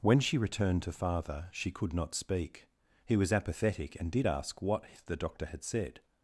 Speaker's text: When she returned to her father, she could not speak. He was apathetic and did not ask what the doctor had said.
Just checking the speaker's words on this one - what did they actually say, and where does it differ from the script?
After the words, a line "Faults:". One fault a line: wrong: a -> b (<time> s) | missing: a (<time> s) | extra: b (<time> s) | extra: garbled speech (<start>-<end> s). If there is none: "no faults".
When she returned to father, she could not speak. He was apathetic and did ask what the doctor had said.
Faults:
missing: her (0.9 s)
missing: not (4.3 s)